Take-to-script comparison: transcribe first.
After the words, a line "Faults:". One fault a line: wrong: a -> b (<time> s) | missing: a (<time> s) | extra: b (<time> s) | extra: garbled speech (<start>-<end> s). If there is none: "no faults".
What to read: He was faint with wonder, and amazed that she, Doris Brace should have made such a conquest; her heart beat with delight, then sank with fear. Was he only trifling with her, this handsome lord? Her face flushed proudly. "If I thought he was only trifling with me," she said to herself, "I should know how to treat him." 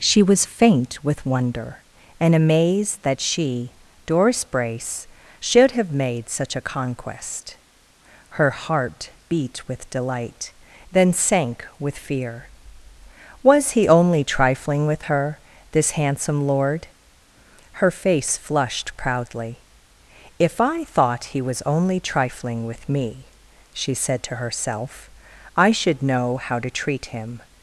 She was faint with wonder, and amazed that she, Doris Brace should have made such a conquest; her heart beat with delight, then sank with fear. Was he only trifling with her, this handsome lord? Her face flushed proudly. "If I thought he was only trifling with me," she said to herself, "I should know how to treat him."
Faults:
wrong: He -> She (0.0 s)